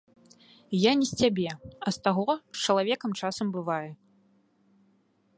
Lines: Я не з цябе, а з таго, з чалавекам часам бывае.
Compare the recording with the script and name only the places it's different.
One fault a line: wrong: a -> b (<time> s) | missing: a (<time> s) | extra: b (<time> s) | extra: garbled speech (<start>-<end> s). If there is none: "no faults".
no faults